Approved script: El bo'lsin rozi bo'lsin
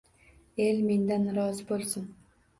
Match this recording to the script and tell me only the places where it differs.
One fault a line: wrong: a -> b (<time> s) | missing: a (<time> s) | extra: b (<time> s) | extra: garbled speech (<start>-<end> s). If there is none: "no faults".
wrong: bo'lsin -> mendan (0.9 s)